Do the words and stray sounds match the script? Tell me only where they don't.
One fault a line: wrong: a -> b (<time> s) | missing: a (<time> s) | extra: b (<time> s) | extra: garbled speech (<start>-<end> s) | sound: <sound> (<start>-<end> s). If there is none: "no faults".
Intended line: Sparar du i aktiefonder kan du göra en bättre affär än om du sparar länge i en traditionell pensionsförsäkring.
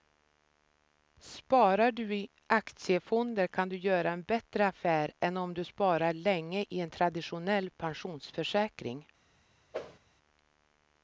sound: whoosh (9.7-10.0 s)